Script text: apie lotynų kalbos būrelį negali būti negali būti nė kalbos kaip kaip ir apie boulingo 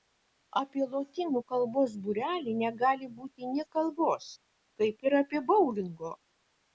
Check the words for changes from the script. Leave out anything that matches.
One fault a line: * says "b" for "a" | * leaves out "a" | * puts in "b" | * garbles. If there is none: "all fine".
* leaves out "negali būti"
* leaves out "kaip"